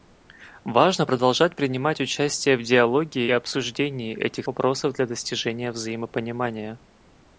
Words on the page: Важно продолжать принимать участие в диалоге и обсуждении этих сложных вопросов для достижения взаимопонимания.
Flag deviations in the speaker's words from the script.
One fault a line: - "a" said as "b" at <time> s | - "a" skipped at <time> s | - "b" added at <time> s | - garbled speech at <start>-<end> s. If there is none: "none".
- "и" skipped at 3.3 s
- "сложных" skipped at 4.5 s